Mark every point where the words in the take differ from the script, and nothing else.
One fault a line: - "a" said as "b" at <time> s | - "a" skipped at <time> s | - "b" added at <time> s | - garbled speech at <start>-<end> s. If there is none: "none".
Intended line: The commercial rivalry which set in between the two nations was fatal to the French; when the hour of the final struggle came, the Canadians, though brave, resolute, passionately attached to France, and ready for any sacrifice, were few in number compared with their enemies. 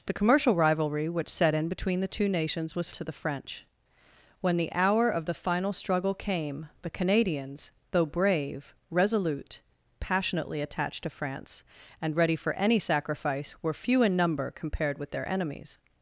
- "fatal" skipped at 2.9 s